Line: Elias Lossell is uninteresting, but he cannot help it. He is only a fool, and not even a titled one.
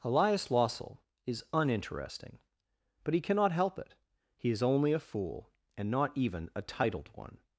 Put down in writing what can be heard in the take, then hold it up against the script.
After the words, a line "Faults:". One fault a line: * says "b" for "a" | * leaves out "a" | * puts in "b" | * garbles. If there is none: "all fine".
Elias Lossell is uninteresting, but he cannot help it. He is only a fool, and not even a titled one.
Faults:
all fine